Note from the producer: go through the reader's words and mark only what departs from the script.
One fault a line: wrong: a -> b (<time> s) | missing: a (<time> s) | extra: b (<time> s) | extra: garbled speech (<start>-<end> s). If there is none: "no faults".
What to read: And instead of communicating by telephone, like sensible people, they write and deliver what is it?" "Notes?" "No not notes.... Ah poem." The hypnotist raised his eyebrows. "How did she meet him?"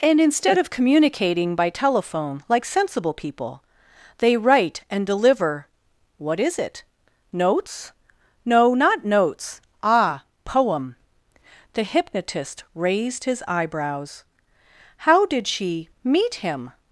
no faults